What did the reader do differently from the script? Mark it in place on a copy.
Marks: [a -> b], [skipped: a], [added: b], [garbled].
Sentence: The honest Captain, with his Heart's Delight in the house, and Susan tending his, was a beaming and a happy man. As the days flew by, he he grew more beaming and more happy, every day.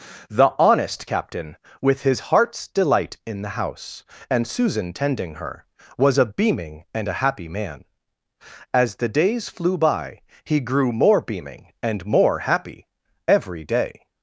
The honest Captain, with his Heart's Delight in the house, and Susan tending [his, -> her] was a beaming and a happy man. As the days flew by, he [skipped: he] grew more beaming and more happy, every day.